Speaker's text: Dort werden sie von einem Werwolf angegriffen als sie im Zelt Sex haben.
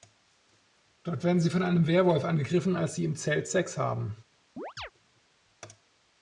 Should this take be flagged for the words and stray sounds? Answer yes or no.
yes